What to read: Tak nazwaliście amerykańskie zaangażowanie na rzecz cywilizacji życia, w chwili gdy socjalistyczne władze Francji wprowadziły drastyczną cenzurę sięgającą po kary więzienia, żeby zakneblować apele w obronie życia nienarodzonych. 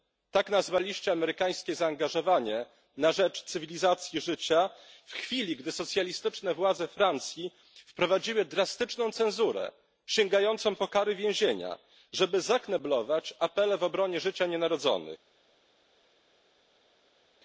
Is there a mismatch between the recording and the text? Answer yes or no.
no